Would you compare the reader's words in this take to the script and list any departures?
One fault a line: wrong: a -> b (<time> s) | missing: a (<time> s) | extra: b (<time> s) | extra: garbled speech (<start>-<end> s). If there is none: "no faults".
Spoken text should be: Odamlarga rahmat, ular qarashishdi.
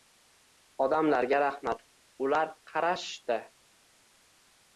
no faults